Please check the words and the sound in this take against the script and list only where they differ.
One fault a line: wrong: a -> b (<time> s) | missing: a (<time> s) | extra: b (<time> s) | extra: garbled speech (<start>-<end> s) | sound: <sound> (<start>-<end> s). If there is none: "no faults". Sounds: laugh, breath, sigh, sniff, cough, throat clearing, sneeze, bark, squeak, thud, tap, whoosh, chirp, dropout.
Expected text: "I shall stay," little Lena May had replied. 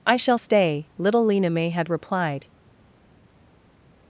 no faults